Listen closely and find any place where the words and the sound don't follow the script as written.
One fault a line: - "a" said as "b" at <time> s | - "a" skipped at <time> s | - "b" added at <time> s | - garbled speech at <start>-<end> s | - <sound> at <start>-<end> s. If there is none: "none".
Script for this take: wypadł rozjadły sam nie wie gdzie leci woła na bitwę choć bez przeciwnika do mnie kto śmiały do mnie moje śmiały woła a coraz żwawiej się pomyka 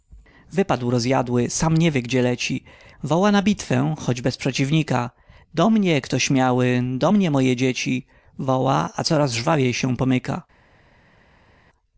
- "śmiały" said as "dzieci" at 7.6 s